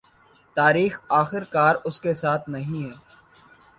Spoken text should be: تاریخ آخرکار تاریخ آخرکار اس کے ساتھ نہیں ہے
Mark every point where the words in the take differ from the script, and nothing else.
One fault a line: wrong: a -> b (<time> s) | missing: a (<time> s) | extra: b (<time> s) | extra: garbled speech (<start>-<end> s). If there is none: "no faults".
missing: تاریخ آخرکار (1.8 s)